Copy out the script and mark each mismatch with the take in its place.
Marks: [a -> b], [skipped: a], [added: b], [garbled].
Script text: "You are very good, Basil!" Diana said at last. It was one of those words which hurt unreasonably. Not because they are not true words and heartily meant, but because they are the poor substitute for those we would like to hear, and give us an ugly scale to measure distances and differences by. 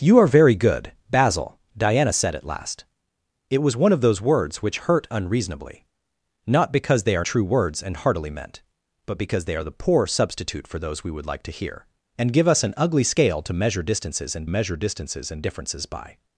"You are very good, Basil!" Diana said at last. It was one of those words which hurt unreasonably. Not because they are [skipped: not] true words and heartily meant, but because they are the poor substitute for those we would like to hear, and give us an ugly scale to measure distances and [added: measure distances and] differences by.